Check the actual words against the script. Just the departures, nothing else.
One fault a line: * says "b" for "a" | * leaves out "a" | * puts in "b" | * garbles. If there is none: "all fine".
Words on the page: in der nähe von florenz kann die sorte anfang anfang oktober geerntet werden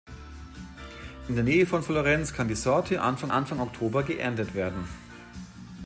all fine